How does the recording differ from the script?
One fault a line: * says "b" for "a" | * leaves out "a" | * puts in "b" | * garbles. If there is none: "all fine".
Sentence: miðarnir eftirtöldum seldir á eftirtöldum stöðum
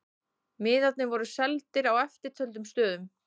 * says "voru" for "eftirtöldum"